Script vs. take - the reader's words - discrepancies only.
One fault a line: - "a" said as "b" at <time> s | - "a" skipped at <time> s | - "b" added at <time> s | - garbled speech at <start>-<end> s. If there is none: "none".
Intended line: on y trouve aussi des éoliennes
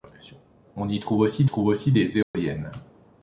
- "trouve aussi" added at 1.4 s